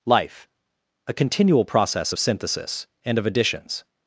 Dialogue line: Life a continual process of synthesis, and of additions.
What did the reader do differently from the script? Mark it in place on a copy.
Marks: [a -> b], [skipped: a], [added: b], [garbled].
Life a continual process of synthesis, and of additions.